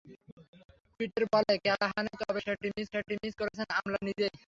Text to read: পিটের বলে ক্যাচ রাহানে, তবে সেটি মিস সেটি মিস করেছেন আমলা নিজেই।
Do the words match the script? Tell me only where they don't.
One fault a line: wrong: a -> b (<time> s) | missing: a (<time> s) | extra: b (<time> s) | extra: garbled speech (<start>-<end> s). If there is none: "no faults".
no faults